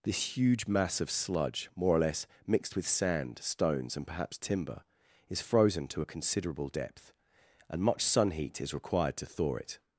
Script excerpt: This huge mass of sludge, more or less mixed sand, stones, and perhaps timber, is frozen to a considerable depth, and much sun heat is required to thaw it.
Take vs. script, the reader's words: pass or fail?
fail